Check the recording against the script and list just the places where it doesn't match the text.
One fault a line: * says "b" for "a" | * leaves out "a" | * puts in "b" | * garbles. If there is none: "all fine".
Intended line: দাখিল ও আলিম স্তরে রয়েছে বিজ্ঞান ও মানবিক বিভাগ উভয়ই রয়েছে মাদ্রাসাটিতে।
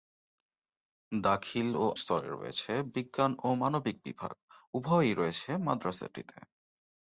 * leaves out "আলিম"